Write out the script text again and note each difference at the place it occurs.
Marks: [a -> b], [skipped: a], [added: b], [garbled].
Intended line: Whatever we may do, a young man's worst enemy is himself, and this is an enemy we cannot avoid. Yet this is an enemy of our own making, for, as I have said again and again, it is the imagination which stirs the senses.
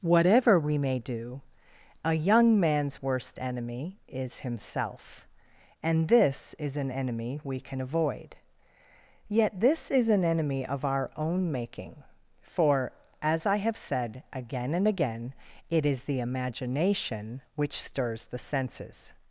Whatever we may do, a young man's worst enemy is himself, and this is an enemy we [cannot -> can] avoid. Yet this is an enemy of our own making, for, as I have said again and again, it is the imagination which stirs the senses.